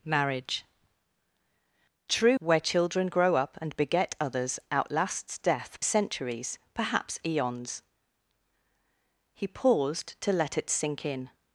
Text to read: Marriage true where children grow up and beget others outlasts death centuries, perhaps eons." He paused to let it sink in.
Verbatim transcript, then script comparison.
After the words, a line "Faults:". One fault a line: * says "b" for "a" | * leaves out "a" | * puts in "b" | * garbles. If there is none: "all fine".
Marriage true where children grow up and beget others outlasts death centuries, perhaps eons." He paused to let it sink in.
Faults:
all fine